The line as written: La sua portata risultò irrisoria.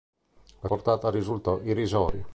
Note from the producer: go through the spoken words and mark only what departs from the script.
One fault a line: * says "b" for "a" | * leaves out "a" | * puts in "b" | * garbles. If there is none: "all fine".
* leaves out "sua"